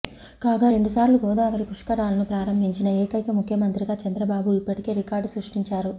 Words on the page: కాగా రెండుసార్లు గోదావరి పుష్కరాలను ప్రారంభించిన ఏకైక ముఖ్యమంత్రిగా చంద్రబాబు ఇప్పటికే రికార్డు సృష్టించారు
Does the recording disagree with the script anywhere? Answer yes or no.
no